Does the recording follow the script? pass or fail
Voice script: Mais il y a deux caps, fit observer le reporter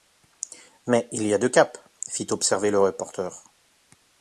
pass